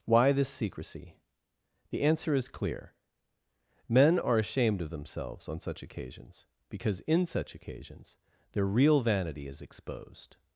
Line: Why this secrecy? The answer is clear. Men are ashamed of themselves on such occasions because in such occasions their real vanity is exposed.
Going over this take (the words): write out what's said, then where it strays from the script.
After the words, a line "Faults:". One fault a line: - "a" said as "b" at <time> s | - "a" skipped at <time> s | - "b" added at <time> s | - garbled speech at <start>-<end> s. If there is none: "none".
Why this secrecy? The answer is clear. Men are ashamed of themselves on such occasions because in such occasions their real vanity is exposed.
Faults:
none